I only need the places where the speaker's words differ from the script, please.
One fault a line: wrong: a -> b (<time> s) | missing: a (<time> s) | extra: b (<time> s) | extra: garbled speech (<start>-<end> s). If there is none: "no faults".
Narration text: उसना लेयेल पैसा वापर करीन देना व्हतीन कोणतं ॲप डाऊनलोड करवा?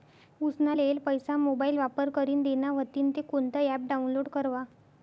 extra: मोबाईल (1.4 s)
extra: ते (3.1 s)